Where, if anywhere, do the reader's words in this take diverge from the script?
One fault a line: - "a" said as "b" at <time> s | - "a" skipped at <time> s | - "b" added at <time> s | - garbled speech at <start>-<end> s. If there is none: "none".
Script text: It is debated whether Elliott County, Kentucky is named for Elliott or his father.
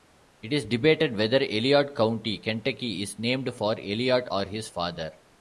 none